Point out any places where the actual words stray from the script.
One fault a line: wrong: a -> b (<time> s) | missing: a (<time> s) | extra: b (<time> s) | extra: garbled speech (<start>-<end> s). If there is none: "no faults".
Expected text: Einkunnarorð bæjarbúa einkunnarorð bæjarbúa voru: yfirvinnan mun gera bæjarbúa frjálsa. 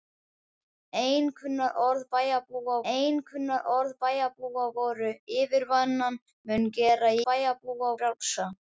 no faults